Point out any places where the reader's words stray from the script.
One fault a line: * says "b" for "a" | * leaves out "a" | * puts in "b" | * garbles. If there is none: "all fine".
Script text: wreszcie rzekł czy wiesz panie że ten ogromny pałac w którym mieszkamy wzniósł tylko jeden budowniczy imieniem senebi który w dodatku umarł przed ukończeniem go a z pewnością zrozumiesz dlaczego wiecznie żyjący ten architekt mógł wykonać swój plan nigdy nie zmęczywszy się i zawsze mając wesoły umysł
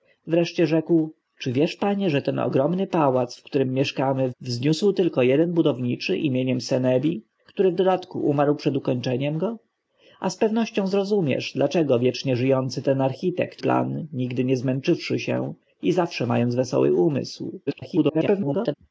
* leaves out "mógł wykonać swój"
* garbles